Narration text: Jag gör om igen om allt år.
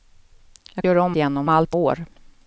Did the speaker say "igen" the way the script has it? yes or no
yes